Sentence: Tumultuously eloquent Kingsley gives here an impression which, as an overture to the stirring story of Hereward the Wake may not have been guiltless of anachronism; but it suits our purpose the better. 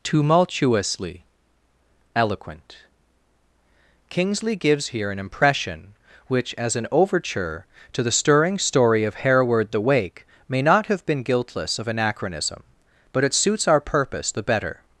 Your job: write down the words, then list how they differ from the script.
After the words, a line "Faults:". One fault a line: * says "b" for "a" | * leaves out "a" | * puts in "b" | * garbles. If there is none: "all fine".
Tumultuously eloquent Kingsley gives here an impression which, as an overture to the stirring story of Hereward the Wake may not have been guiltless of anachronism; but it suits our purpose the better.
Faults:
all fine